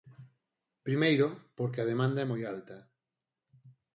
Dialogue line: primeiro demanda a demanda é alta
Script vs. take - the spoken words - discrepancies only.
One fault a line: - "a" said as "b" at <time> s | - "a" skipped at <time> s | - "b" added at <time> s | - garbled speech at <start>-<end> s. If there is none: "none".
- "demanda" said as "porque" at 1.6 s
- "moi" added at 2.3 s